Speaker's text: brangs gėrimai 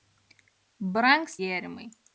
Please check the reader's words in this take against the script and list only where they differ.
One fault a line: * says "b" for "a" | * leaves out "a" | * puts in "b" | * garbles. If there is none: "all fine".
all fine